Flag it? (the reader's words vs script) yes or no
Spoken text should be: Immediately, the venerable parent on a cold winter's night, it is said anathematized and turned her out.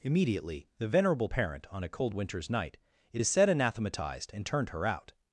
no